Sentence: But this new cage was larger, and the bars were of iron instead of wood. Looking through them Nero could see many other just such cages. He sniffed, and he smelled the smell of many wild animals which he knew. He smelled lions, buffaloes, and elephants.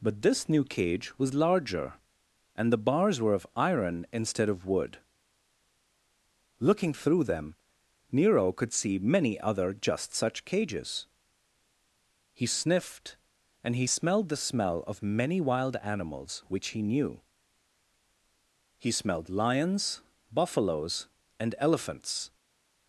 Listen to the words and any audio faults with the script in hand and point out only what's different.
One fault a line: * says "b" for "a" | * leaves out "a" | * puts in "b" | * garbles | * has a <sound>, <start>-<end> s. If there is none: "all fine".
all fine